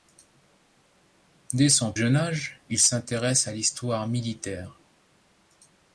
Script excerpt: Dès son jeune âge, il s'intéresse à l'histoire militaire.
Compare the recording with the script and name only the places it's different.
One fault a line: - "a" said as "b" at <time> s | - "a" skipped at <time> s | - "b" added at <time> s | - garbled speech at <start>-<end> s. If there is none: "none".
none